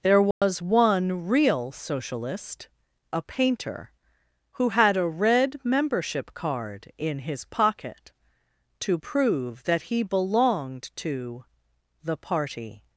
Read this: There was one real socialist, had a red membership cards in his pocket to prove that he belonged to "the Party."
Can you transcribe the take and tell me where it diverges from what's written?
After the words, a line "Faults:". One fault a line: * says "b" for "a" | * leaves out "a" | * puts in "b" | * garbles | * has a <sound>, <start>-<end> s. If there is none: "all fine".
There was one real socialist, a painter, who had a red membership card in his pocket to prove that he belonged to "the Party."
Faults:
* has a dropout, 0.3-0.4 s
* puts in "a painter who"
* says "card" for "cards"